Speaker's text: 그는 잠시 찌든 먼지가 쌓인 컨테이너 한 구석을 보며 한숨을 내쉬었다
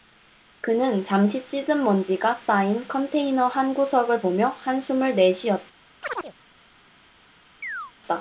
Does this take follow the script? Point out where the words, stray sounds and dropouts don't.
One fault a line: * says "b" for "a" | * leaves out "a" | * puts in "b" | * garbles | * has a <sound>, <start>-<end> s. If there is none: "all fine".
* has a chirp, 6.0-6.3 s
* has a chirp, 7.6-7.9 s